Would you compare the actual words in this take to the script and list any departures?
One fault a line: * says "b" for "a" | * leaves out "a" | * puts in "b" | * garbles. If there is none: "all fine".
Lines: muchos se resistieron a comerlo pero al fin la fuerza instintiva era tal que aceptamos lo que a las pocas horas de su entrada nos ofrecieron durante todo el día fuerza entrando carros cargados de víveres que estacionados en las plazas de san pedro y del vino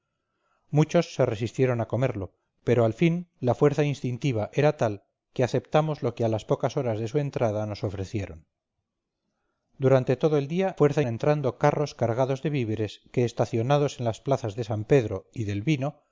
all fine